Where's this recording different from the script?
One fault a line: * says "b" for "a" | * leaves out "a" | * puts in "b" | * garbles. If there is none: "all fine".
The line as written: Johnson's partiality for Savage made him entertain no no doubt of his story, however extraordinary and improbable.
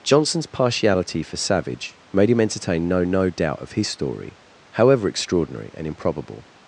all fine